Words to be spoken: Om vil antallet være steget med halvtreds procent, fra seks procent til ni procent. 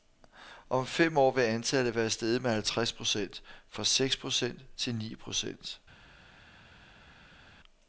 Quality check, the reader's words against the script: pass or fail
fail